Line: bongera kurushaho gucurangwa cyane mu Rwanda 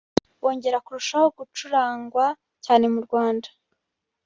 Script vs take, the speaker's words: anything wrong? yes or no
no